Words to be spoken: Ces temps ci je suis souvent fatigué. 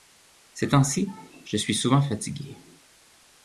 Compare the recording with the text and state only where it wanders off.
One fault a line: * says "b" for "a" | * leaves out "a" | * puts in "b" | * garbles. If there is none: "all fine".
all fine